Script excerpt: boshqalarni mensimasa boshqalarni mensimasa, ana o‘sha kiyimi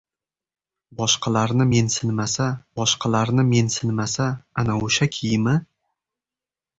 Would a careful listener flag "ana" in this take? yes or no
no